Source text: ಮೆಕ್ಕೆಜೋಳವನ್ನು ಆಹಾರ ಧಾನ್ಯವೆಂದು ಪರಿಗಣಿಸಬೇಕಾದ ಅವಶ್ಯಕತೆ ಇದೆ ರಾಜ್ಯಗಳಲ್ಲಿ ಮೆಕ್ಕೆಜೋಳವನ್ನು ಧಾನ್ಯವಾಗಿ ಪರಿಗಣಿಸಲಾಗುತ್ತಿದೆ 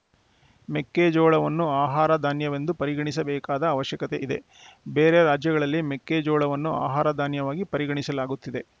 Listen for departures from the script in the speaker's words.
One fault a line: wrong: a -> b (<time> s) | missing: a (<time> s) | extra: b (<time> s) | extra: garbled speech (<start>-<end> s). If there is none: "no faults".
extra: ಬೇರೆ (4.9 s)
extra: ಆಹಾರ (6.9 s)